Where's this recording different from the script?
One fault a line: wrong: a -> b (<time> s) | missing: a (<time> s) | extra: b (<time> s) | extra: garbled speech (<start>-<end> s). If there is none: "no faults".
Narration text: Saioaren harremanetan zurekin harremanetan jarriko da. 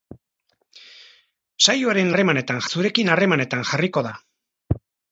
no faults